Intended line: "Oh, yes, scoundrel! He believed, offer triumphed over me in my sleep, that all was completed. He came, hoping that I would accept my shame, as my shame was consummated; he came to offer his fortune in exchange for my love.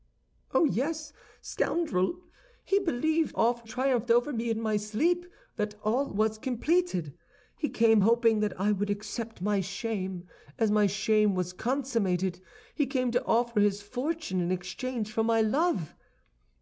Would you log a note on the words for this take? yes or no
no